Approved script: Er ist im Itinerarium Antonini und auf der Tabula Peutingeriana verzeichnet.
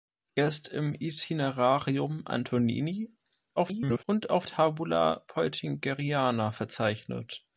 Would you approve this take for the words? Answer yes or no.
no